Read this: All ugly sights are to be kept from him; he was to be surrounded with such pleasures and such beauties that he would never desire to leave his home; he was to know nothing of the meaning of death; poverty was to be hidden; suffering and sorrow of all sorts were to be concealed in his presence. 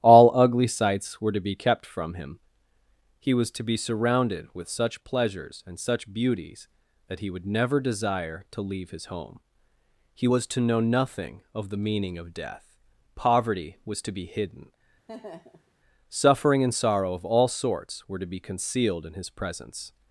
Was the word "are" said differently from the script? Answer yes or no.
yes